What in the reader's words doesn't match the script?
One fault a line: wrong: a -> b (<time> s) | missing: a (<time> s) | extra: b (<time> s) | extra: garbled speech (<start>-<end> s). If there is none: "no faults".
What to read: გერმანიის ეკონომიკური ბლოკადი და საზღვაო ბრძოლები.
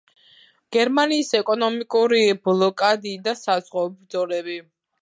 no faults